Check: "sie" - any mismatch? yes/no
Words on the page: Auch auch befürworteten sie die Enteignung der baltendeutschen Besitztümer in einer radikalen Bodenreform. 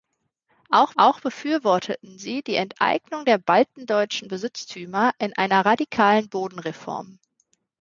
no